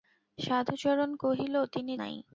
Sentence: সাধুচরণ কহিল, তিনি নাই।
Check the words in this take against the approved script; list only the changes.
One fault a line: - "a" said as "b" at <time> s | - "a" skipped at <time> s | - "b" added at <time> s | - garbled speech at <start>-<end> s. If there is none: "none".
none